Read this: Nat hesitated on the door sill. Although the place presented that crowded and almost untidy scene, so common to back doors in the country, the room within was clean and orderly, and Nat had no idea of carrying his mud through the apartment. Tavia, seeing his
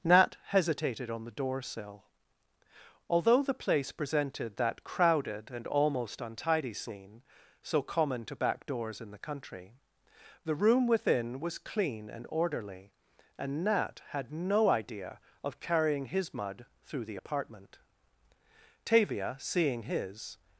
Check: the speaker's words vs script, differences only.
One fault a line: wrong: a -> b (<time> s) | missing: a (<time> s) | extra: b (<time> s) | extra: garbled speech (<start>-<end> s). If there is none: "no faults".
no faults